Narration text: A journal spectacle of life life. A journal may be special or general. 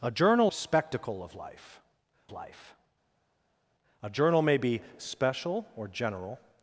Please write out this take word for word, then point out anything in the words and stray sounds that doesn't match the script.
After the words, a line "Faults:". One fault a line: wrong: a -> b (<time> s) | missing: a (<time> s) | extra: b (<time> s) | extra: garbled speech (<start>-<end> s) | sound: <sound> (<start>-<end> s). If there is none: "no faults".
A journal spectacle of life life. A journal may be special or general.
Faults:
no faults